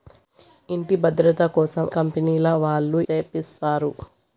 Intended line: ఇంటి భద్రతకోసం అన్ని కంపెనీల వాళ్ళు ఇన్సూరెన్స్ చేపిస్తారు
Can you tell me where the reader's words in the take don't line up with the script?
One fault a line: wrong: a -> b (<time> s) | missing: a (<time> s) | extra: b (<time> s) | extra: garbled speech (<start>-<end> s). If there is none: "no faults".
missing: అన్ని (1.9 s)
missing: ఇన్సూరెన్స్ (3.0 s)